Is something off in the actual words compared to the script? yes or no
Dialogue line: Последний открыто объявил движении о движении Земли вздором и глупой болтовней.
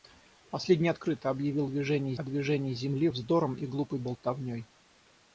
no